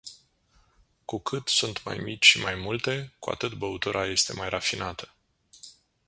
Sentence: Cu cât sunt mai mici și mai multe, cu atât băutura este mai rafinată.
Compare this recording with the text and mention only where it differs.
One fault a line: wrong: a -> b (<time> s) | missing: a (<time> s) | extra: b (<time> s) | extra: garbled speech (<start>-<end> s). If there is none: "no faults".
no faults